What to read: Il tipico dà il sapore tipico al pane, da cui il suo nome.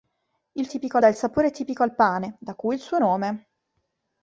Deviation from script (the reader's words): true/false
false